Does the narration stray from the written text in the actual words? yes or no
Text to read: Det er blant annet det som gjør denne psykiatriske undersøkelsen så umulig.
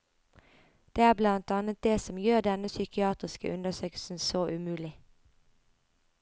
no